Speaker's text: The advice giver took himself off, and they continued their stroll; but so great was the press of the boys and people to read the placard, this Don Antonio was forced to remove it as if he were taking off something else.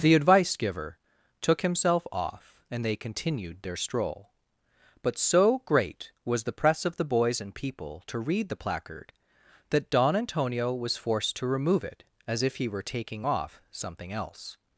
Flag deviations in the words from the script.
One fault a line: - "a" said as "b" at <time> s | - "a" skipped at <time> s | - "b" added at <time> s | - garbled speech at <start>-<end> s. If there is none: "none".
- "this" said as "that" at 9.7 s